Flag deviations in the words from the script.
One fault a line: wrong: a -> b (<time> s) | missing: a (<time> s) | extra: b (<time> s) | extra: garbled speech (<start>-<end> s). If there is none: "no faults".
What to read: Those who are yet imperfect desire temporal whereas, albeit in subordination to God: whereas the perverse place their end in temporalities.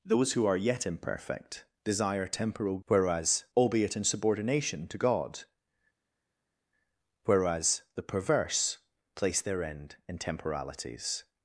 no faults